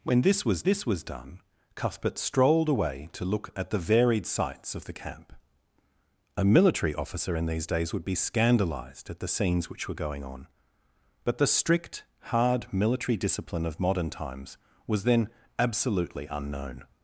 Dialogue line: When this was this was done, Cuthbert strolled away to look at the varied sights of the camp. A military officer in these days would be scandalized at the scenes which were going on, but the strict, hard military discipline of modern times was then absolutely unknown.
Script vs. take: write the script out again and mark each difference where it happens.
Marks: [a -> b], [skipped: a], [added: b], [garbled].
When this was this was done, Cuthbert strolled away to look at the varied sights of the camp. A military officer in these days would be scandalized at the scenes which were going on, but the strict, hard military discipline of modern times was then absolutely unknown.